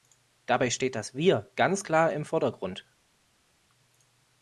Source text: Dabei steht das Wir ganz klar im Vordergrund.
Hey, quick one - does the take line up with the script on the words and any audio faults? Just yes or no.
yes